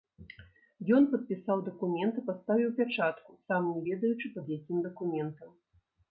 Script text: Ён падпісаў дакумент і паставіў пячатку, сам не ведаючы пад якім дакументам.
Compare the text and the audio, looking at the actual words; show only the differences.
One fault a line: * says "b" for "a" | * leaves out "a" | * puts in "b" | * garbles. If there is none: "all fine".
all fine